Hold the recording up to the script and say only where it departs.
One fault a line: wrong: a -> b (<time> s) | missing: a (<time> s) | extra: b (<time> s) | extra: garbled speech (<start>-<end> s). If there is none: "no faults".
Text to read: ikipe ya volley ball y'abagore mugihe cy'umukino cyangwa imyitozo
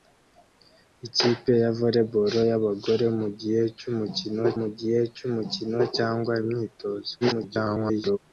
extra: mugihe cy'umukino (4.6 s)
extra: garbled speech (7.2-8.2 s)